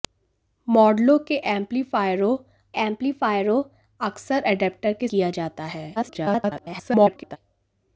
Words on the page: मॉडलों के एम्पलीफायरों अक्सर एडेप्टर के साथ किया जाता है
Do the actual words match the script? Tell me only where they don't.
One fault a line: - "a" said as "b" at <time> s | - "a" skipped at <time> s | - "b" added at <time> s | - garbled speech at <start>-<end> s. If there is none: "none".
- "एम्पलीफायरों" added at 2.8 s
- "साथ" skipped at 5.1 s
- garbled speech at 6.0-7.4 s